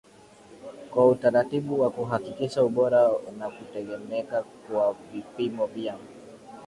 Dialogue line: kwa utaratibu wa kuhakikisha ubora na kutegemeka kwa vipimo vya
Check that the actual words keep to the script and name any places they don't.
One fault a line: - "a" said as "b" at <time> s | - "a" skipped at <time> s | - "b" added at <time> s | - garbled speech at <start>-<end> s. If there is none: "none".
none